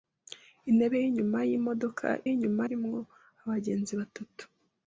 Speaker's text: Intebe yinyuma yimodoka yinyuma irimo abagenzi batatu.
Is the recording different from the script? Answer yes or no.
no